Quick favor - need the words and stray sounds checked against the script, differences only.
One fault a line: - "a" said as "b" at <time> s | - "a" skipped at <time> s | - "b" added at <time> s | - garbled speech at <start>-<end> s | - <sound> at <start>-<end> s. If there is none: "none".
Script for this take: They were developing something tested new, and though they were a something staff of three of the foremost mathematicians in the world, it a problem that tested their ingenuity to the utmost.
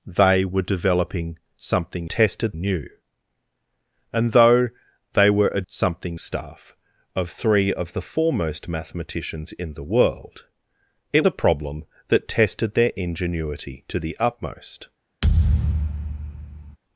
- thud at 15.2-16.8 s